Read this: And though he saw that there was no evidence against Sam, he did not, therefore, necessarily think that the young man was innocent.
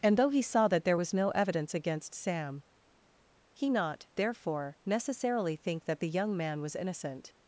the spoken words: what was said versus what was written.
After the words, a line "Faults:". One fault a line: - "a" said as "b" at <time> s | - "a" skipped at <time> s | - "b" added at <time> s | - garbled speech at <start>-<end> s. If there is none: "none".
And though he saw that there was no evidence against Sam, he not, therefore, necessarily think that the young man was innocent.
Faults:
- "did" skipped at 3.7 s